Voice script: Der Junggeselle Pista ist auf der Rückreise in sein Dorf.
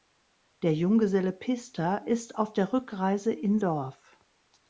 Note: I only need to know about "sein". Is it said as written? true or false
false